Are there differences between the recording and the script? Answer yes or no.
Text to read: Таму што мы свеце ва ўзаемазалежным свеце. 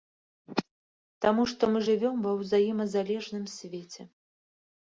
yes